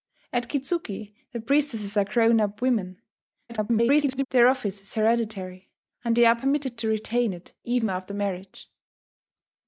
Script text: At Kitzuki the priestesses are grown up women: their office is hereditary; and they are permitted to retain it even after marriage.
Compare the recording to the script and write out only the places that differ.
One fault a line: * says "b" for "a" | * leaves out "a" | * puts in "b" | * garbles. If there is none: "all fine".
* garbles